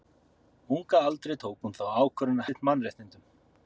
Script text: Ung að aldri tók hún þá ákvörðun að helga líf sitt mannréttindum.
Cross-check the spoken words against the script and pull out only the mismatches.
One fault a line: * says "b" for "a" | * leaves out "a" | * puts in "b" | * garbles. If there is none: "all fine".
* leaves out "helga líf"